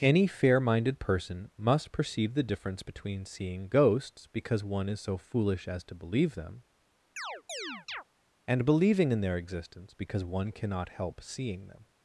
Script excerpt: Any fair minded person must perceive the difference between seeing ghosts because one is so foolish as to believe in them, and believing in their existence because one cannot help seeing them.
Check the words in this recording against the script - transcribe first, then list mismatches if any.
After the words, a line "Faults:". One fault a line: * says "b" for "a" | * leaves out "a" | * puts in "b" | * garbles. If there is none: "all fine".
Any fair minded person must perceive the difference between seeing ghosts because one is so foolish as to believe them, and believing in their existence because one cannot help seeing them.
Faults:
* leaves out "in"